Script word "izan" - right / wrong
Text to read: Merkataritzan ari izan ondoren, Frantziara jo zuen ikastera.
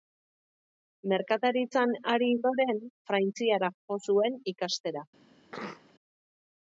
wrong